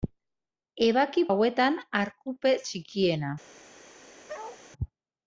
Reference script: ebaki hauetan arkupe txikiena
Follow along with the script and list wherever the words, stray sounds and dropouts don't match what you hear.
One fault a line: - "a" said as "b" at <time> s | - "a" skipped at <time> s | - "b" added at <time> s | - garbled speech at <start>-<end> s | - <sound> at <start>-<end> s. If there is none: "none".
- bark at 4.3-4.6 s